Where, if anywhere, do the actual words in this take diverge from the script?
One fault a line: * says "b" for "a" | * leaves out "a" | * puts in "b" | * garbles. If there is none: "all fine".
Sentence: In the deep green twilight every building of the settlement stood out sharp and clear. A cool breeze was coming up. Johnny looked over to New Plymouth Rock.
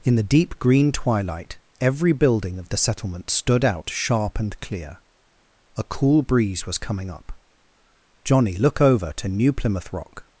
* says "look" for "looked"